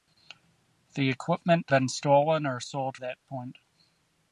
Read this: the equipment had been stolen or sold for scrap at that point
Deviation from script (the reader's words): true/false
true